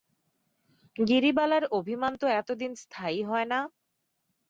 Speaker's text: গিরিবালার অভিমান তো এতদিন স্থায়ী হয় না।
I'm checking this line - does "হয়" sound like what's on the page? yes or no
yes